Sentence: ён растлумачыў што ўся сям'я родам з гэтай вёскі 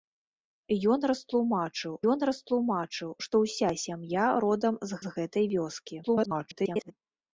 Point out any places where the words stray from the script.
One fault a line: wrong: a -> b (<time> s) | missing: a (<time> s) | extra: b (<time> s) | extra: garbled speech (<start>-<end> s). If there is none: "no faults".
extra: ён растлумачыў (2.1 s)
extra: з (5.0 s)
extra: garbled speech (6.0-6.9 s)